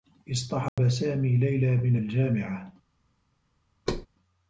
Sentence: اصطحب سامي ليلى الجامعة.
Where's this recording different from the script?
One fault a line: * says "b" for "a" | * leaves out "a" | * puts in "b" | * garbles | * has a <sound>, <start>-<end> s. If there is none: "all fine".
* has a dropout, 0.7-0.8 s
* puts in "من"
* has a thud, 3.9-4.1 s